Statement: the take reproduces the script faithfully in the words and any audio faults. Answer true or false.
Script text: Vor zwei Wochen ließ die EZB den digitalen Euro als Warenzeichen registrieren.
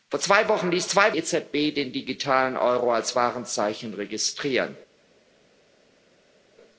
false